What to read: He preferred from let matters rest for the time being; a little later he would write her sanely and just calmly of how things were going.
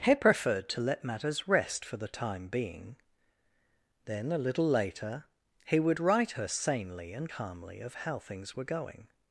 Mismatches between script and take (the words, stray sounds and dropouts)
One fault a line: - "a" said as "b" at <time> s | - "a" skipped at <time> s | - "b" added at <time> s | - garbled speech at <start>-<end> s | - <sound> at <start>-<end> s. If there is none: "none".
- "from" said as "to" at 0.7 s
- "then" added at 4.0 s
- "just" skipped at 7.3 s